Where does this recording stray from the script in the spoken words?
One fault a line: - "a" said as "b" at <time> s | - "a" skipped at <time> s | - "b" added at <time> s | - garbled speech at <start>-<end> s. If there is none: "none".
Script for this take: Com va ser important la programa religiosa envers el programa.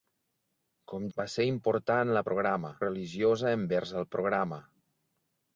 none